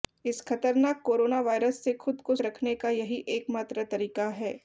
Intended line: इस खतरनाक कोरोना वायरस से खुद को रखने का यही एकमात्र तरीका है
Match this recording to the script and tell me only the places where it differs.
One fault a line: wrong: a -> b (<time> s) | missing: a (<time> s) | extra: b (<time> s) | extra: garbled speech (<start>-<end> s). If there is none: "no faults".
no faults